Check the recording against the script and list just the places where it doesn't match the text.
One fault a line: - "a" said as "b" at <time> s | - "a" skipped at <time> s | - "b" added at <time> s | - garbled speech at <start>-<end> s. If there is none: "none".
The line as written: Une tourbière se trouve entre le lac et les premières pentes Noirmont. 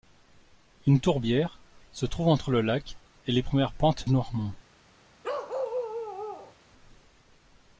none